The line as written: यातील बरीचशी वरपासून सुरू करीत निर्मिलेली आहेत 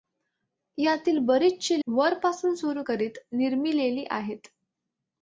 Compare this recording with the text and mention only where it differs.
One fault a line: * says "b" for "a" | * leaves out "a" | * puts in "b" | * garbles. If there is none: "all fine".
all fine